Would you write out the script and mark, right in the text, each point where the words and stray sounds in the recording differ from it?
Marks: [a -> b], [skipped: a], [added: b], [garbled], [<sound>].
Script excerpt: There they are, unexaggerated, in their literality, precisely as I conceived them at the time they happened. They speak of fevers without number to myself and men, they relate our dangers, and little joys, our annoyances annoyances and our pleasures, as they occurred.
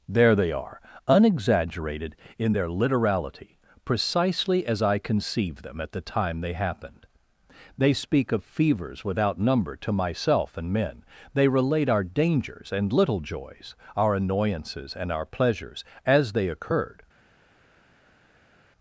There they are, unexaggerated, in their literality, precisely as I conceived them at the time they happened. They speak of fevers without number to myself and men, they relate our dangers, and little joys, our annoyances [skipped: annoyances] and our pleasures, as they occurred.